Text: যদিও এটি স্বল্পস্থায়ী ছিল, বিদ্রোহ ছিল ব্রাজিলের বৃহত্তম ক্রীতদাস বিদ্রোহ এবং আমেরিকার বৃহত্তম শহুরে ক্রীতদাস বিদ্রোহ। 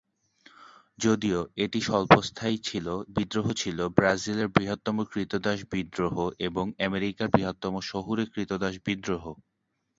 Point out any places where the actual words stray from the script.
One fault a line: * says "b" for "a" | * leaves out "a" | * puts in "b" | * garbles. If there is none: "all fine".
all fine